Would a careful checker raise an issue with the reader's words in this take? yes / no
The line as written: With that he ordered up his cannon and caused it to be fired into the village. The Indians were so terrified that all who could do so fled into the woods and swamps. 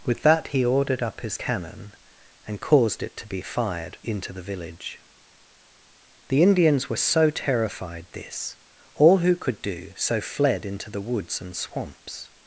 yes